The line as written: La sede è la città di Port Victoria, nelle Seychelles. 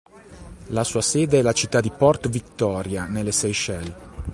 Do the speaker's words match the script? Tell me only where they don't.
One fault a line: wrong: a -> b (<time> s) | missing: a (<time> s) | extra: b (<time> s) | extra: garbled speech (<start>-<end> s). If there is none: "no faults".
extra: sua (0.8 s)